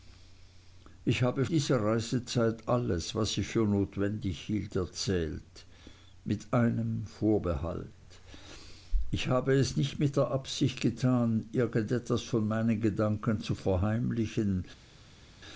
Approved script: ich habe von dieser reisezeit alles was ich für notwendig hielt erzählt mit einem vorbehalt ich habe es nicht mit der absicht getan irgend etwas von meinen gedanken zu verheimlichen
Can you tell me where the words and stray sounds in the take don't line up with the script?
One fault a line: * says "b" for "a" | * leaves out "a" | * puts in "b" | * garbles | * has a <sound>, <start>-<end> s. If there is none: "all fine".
* leaves out "von"